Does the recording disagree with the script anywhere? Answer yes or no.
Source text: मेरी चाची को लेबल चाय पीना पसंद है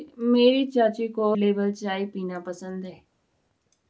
no